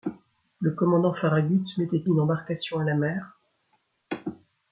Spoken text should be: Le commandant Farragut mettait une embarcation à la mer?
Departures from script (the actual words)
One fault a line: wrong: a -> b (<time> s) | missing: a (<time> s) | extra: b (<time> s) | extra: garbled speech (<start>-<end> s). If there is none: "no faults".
no faults